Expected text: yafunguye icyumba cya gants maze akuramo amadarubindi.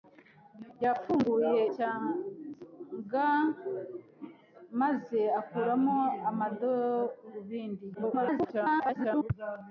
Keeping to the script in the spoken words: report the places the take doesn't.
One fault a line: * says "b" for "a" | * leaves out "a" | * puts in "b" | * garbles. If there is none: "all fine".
* leaves out "icyumba"
* garbles